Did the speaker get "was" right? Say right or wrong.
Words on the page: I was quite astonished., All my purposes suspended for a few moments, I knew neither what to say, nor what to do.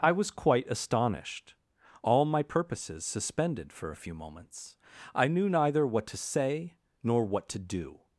right